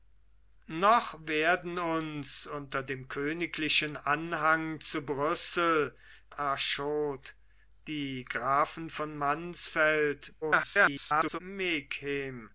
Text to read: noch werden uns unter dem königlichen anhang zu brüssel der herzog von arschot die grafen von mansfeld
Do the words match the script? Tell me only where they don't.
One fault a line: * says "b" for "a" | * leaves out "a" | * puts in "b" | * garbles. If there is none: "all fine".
* leaves out "der herzog von"
* garbles